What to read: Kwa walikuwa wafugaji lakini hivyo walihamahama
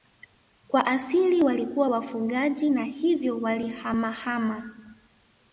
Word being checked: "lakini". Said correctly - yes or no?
no